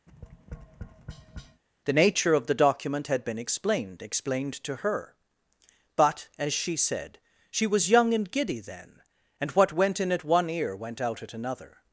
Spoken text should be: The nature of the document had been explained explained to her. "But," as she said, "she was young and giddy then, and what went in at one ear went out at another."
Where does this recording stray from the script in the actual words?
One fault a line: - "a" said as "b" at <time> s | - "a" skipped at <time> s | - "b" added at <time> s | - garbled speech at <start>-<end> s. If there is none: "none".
none